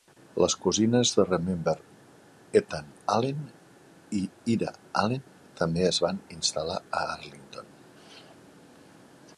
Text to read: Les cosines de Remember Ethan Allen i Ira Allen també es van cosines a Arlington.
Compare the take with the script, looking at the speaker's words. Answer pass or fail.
fail